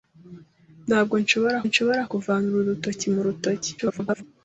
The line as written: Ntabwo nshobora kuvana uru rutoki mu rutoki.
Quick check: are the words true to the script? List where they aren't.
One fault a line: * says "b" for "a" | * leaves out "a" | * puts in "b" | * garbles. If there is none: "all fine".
* puts in "nshobora"
* garbles